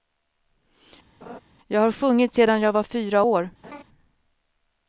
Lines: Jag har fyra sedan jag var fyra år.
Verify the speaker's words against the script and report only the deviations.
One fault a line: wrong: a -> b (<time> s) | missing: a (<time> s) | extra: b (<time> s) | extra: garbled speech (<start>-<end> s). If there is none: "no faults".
wrong: fyra -> sjungit (1.9 s)